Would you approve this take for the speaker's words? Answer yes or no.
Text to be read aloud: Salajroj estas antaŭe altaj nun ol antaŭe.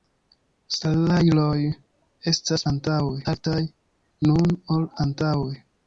yes